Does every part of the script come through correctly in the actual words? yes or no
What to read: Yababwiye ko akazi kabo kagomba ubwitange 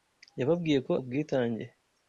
no